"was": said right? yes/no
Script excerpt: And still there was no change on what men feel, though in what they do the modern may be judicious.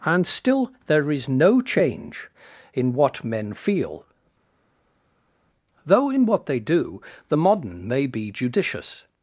no